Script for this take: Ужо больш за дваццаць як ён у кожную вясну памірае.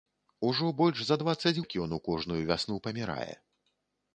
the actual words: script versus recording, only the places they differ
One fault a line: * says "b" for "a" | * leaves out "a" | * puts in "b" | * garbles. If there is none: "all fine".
all fine